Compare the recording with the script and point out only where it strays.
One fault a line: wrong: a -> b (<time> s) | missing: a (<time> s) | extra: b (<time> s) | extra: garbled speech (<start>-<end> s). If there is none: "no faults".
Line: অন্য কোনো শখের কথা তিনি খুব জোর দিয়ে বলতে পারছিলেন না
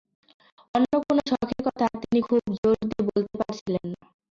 no faults